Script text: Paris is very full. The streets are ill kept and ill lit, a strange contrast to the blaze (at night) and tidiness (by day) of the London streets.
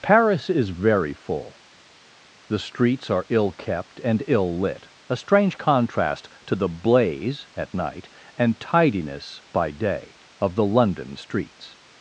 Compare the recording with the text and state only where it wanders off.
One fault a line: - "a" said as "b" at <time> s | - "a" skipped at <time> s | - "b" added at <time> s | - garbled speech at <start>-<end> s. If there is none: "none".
none